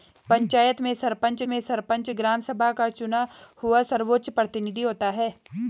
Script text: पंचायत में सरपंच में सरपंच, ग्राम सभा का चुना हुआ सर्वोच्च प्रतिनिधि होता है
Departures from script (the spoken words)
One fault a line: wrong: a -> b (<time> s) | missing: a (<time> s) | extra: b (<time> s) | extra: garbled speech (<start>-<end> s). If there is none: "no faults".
no faults